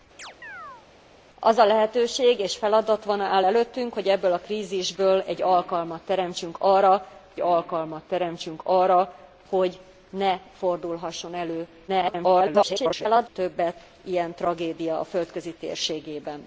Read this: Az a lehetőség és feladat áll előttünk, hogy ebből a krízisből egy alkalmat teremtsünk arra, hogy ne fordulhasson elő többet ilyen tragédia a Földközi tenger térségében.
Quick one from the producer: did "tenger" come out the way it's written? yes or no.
no